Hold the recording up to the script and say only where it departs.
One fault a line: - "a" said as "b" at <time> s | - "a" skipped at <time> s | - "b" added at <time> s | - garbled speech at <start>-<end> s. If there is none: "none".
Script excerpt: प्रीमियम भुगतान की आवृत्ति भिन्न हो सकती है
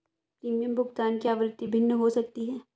none